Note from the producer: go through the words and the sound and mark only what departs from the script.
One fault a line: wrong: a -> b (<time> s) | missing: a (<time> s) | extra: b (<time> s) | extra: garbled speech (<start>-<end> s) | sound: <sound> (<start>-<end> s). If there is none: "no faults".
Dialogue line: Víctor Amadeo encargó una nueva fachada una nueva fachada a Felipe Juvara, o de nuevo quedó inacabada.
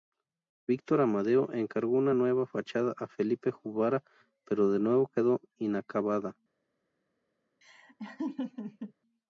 missing: una nueva fachada (2.9 s)
wrong: o -> pero (4.4 s)
sound: laugh (7.6-8.9 s)